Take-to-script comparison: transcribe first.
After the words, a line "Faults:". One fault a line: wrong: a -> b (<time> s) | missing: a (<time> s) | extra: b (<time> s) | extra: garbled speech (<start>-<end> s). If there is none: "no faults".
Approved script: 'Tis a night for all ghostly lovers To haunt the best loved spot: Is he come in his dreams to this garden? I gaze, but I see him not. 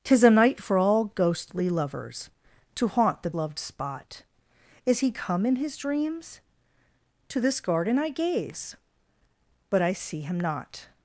'Tis a night for all ghostly lovers To haunt the loved spot: Is he come in his dreams to this garden? I gaze, but I see him not.
Faults:
missing: best (3.3 s)